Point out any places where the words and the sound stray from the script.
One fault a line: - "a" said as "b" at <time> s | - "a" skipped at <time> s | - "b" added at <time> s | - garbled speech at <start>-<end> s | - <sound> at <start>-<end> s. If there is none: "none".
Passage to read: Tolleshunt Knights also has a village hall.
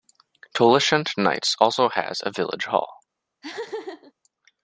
- laugh at 3.4-4.1 s